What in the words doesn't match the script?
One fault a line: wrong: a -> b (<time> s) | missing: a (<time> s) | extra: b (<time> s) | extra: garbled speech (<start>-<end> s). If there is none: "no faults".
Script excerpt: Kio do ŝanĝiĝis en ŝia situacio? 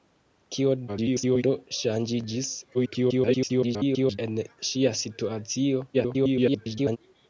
extra: garbled speech (0.9-1.4 s)
extra: garbled speech (2.7-4.2 s)
extra: garbled speech (5.9-7.0 s)